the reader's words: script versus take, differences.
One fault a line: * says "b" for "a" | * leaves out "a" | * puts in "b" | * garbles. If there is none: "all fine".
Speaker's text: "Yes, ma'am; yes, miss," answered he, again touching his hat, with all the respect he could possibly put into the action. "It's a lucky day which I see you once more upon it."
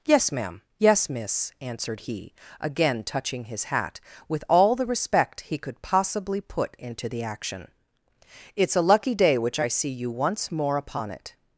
all fine